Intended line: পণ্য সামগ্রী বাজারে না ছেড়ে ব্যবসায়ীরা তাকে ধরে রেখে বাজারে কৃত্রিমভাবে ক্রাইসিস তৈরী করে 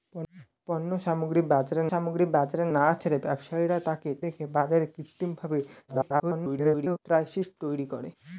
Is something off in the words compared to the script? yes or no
yes